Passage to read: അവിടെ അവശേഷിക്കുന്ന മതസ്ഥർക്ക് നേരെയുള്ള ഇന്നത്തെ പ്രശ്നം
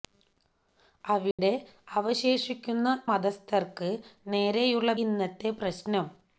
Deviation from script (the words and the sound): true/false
true